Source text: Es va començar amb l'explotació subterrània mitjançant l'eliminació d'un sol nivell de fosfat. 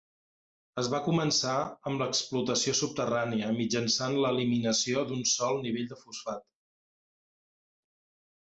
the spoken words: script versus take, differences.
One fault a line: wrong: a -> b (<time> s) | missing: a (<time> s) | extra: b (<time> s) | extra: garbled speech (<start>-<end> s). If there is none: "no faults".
no faults